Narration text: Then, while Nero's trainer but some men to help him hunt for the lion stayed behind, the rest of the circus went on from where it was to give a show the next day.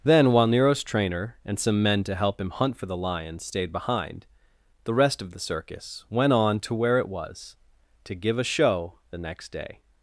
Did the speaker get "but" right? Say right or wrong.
wrong